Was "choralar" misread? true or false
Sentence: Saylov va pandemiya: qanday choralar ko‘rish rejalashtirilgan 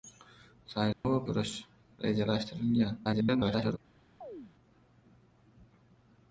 true